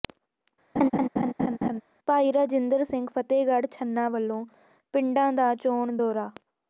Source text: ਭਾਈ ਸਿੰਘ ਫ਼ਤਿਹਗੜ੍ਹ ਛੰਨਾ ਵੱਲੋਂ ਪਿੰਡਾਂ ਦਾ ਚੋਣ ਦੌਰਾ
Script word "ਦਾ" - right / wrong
right